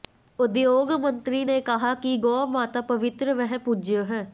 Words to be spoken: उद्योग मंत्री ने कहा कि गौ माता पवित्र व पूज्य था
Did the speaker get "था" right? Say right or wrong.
wrong